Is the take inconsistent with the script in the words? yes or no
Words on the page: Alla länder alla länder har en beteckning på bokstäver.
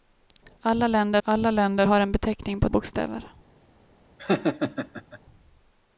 no